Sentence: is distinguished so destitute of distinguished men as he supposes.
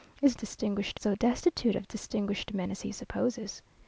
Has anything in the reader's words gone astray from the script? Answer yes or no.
no